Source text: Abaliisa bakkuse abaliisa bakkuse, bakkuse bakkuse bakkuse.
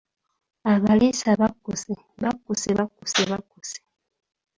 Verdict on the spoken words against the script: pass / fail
fail